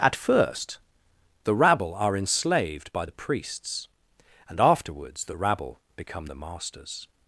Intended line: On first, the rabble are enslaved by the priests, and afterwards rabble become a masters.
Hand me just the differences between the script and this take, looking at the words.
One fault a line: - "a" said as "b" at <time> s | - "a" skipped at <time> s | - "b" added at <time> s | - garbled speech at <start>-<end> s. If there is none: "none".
- "On" said as "At" at 0.0 s
- "the" added at 5.2 s
- "a" said as "the" at 6.3 s